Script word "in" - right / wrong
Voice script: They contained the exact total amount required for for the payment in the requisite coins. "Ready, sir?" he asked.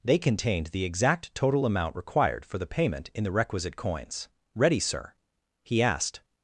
right